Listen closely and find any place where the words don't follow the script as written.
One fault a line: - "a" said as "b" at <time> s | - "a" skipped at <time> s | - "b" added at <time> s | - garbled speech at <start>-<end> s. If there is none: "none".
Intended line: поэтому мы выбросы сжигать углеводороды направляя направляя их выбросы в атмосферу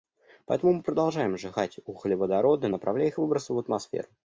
- "выбросы" said as "продолжаем" at 0.8 s
- "направляя" skipped at 3.1 s